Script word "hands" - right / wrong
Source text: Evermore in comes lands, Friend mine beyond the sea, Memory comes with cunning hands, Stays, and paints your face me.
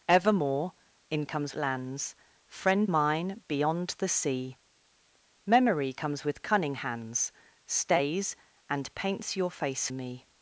right